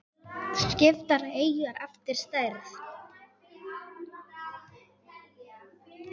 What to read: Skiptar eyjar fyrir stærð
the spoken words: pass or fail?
fail